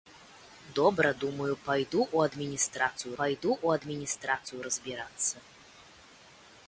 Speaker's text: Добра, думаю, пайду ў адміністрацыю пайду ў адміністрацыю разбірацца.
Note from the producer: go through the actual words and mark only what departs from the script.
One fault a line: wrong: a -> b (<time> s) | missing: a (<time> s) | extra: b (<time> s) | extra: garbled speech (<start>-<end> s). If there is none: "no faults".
no faults